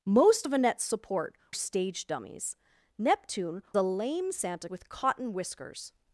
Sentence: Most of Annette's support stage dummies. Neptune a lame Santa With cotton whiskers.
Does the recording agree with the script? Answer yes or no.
yes